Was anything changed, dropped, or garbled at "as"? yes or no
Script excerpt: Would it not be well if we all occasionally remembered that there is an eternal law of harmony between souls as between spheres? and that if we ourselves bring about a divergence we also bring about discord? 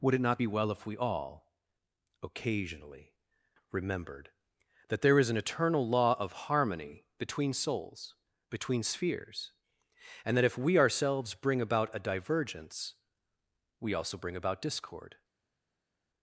yes